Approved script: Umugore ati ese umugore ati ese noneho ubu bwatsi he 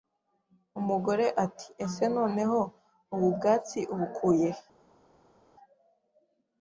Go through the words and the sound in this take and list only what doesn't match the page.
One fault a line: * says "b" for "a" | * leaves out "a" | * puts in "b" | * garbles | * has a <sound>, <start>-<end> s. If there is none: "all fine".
* leaves out "umugore ati ese"
* puts in "ubukuye"